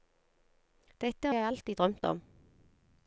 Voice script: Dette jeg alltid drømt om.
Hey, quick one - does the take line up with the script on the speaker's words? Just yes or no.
yes